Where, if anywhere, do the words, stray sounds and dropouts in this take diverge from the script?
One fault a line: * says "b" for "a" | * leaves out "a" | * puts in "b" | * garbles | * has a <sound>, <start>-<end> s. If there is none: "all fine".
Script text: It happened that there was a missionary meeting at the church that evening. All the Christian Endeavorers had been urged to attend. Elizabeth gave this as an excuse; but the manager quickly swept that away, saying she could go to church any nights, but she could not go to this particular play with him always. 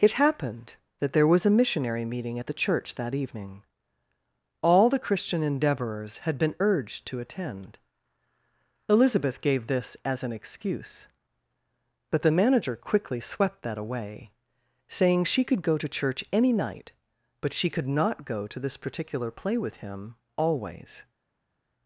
* says "night" for "nights"